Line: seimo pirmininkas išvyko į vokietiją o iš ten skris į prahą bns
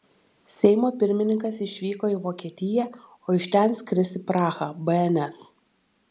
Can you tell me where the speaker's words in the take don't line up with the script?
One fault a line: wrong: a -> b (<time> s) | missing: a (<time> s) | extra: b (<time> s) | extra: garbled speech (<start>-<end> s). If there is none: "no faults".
no faults